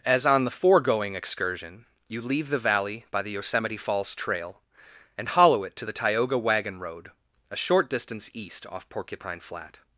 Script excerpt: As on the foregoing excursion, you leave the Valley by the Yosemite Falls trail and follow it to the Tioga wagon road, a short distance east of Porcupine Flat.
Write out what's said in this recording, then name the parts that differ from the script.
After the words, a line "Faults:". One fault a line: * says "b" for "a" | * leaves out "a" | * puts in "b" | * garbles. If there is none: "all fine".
As on the foregoing excursion, you leave the Valley by the Yosemite Falls trail and hollow it to the Tioga wagon road, a short distance east off Porcupine Flat.
Faults:
* says "hollow" for "follow"
* says "off" for "of"